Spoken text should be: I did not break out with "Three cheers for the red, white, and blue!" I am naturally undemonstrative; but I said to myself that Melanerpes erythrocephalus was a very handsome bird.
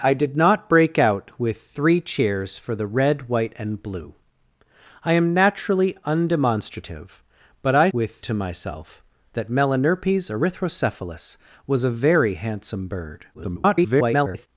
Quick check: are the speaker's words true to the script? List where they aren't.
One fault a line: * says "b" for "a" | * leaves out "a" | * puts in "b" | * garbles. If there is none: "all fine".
* says "with" for "said"
* garbles